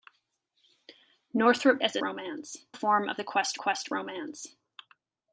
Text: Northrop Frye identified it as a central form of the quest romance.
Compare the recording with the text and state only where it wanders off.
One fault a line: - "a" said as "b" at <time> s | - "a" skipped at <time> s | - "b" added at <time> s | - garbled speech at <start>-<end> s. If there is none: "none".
- "Frye identified it" skipped at 1.8 s
- "central" said as "romance" at 2.0 s
- "quest" added at 3.6 s